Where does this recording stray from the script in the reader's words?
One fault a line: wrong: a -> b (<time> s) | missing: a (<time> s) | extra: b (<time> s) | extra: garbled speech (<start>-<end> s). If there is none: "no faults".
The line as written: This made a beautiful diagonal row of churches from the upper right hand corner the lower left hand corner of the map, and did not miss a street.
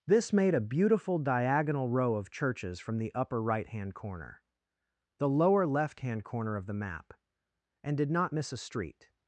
no faults